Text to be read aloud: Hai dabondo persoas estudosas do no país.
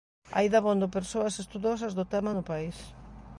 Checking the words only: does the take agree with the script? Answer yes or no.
no